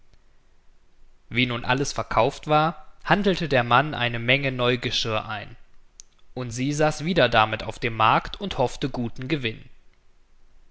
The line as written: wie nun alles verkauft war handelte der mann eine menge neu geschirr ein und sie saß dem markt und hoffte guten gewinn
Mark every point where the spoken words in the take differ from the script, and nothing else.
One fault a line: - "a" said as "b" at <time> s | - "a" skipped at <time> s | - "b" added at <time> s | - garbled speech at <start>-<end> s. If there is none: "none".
- "wieder damit auf" added at 7.0 s